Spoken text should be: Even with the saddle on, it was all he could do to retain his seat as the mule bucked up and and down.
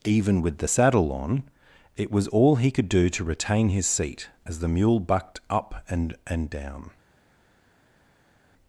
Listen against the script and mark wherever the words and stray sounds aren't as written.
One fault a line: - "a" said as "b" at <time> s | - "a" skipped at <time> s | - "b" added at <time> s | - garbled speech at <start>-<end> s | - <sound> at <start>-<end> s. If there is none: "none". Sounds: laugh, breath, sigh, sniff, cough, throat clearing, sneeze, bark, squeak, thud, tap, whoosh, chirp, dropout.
none